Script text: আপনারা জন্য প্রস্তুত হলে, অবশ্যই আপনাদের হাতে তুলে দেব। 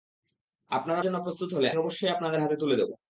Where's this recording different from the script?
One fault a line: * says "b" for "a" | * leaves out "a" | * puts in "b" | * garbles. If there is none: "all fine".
all fine